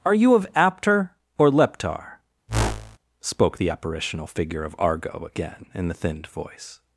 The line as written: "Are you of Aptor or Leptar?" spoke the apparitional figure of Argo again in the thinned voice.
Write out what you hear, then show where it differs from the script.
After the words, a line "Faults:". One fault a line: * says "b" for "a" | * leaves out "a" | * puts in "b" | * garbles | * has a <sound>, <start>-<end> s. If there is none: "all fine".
"Are you of Aptor or Leptar?" spoke the apparitional figure of Argo again in the thinned voice.
Faults:
* has a whoosh, 2.5-3.0 s